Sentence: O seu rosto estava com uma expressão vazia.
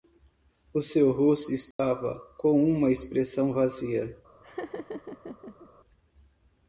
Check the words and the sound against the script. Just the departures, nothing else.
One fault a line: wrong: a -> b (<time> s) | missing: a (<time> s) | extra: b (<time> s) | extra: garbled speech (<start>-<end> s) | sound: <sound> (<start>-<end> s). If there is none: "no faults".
sound: dropout (1.7-1.8 s)
sound: laugh (4.4-5.7 s)